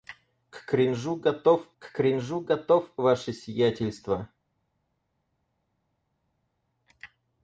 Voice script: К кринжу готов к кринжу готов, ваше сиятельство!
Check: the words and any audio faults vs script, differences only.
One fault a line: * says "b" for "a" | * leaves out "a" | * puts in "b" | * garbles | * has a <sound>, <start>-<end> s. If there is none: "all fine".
all fine